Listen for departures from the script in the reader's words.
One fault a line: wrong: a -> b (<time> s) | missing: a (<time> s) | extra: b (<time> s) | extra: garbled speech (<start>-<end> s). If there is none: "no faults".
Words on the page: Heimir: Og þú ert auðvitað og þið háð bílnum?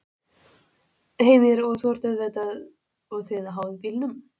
no faults